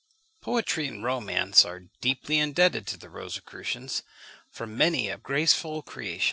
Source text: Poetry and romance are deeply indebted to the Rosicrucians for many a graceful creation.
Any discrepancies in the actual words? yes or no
no